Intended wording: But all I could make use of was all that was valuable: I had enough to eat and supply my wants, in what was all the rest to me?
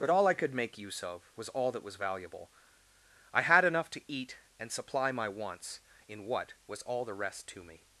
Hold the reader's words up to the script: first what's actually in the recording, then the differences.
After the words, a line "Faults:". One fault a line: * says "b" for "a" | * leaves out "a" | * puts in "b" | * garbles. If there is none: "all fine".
But all I could make use of was all that was valuable: I had enough to eat and supply my wants, in what was all the rest to me?
Faults:
all fine